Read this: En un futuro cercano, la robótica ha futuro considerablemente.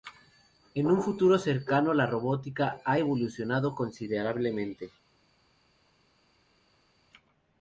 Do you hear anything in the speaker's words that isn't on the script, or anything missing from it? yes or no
yes